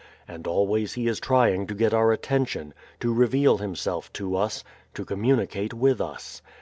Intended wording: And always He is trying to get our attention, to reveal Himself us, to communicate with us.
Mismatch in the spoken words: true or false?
true